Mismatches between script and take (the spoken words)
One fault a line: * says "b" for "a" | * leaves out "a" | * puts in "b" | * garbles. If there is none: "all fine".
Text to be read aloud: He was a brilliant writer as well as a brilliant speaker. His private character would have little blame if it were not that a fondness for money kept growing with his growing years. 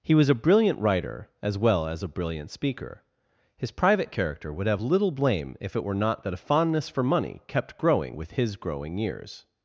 all fine